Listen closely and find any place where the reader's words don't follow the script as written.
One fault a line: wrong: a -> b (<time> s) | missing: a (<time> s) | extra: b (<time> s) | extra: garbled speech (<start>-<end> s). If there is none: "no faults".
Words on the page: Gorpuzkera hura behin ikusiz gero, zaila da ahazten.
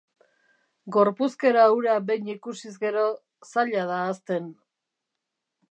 no faults